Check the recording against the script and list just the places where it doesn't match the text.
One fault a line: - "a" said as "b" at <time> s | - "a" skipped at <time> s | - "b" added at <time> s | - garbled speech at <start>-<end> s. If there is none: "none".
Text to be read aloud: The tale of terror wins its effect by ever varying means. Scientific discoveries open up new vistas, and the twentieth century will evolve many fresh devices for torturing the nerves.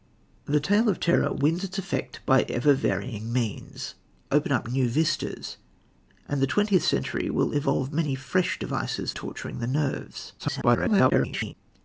- "Scientific discoveries" skipped at 3.9 s
- "for" skipped at 9.1 s
- garbled speech at 10.4-11.5 s